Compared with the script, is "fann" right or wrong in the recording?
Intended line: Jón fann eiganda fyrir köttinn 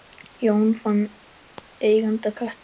right